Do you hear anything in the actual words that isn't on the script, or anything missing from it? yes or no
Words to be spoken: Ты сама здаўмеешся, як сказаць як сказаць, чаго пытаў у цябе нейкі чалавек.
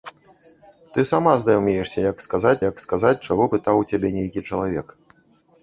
no